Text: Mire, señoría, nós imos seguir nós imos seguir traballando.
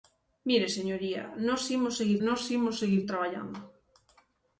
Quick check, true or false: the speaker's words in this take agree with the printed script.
true